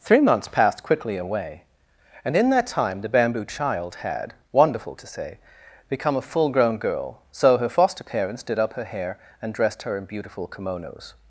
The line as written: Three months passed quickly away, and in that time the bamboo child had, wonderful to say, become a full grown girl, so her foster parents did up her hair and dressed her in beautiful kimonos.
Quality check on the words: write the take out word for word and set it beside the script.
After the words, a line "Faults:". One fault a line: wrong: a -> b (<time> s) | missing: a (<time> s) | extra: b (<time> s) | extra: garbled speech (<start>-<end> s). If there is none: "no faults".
Three months passed quickly away, and in that time the bamboo child had, wonderful to say, become a full grown girl, so her foster parents did up her hair and dressed her in beautiful kimonos.
Faults:
no faults